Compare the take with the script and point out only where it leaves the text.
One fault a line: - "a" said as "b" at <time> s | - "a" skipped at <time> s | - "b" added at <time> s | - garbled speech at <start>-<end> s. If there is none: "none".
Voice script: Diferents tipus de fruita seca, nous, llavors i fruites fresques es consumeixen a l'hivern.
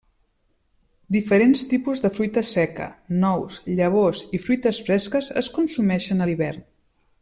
none